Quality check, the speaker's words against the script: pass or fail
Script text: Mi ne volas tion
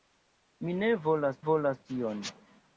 fail